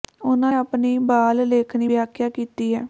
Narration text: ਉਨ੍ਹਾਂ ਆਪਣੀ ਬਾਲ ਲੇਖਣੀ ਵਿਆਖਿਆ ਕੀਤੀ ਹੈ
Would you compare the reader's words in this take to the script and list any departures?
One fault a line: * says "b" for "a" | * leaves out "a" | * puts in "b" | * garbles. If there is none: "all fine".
all fine